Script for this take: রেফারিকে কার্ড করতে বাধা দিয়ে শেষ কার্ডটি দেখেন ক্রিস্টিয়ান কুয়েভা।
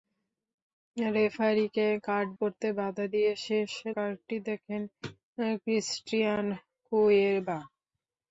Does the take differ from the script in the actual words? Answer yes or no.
no